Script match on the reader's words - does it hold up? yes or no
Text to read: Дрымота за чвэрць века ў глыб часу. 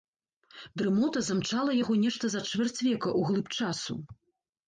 no